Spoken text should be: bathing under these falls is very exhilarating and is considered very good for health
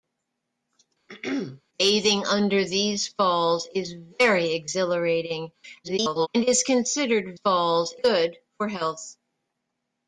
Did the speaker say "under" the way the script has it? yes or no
yes